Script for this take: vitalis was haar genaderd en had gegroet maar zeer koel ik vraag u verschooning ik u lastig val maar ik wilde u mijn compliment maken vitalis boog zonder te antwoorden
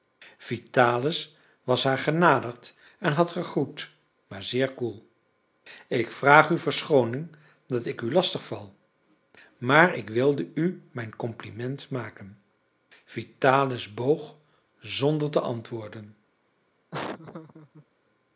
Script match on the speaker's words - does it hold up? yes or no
no